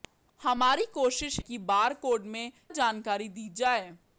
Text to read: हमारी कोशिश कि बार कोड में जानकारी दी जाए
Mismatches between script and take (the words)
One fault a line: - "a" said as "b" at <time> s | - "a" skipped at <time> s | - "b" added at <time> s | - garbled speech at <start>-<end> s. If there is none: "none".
none